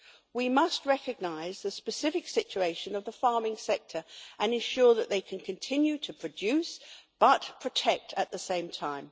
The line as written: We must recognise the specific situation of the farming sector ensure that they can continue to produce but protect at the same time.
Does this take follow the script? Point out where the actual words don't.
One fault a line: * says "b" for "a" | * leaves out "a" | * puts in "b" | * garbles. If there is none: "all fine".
* puts in "and"